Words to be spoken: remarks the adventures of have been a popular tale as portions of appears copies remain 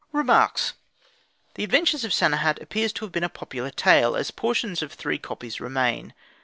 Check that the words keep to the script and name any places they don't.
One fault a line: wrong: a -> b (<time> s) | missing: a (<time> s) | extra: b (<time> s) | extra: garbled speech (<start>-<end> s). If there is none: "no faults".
extra: sanehat appears to (2.1 s)
wrong: appears -> three (4.9 s)